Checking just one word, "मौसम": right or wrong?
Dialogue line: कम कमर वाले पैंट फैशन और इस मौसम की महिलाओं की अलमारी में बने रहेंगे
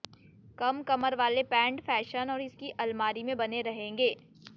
wrong